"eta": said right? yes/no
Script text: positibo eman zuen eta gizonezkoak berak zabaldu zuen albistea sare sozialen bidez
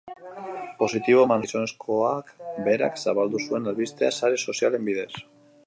no